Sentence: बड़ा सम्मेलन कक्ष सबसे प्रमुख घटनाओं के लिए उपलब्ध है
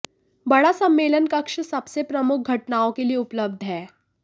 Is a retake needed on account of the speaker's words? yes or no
no